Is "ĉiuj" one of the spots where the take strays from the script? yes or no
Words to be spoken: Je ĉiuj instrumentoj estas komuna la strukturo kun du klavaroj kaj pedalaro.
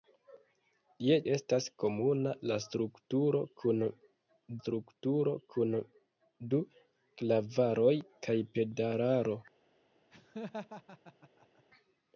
yes